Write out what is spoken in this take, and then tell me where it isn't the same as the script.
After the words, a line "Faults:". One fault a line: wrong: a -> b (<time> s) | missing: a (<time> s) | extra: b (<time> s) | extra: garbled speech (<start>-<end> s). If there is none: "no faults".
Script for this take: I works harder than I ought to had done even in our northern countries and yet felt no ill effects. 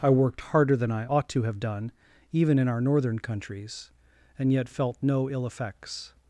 I worked harder than I ought to have done even in our northern countries and yet felt no ill effects.
Faults:
wrong: works -> worked (0.1 s)
wrong: had -> have (1.4 s)